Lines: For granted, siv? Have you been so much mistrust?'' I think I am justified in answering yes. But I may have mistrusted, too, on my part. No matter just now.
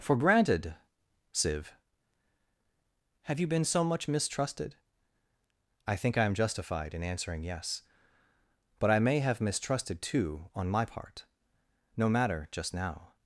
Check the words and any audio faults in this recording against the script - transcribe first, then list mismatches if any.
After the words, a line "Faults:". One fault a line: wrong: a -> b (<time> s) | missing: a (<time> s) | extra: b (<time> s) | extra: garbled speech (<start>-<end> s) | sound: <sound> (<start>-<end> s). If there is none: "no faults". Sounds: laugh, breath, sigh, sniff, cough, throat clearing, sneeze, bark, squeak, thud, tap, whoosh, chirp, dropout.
For granted, siv? Have you been so much mistrusted?'' I think I am justified in answering yes. But I may have mistrusted, too, on my part. No matter just now.
Faults:
wrong: mistrust -> mistrusted (4.1 s)